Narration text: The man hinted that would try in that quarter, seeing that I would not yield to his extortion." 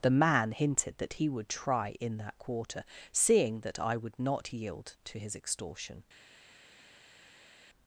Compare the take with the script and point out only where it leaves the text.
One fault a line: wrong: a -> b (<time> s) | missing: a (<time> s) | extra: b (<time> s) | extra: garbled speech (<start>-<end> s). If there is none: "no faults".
extra: he (1.1 s)